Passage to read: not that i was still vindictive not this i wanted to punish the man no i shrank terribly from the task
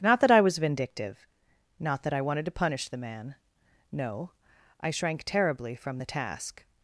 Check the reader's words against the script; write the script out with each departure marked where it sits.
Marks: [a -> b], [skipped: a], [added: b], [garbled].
not that i was [skipped: still] vindictive not [this -> that] i wanted to punish the man no i shrank terribly from the task